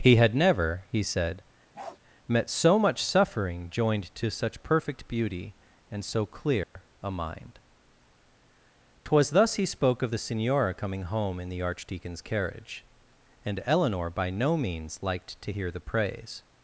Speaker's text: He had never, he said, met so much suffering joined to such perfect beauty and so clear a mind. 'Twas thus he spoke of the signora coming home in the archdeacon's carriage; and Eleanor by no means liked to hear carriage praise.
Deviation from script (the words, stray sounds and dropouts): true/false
true